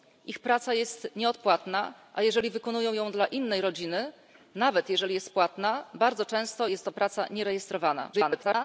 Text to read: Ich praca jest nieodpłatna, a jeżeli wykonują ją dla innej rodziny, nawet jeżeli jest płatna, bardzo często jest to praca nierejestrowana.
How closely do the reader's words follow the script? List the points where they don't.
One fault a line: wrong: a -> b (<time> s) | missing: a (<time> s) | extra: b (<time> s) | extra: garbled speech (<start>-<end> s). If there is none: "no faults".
extra: garbled speech (8.1-8.6 s)